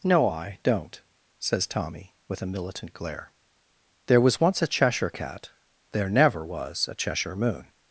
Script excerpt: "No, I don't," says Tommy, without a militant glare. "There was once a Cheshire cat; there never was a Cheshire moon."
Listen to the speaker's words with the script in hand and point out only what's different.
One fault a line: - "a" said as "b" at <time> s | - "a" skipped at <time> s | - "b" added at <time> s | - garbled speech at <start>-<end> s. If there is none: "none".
- "without" said as "with" at 2.3 s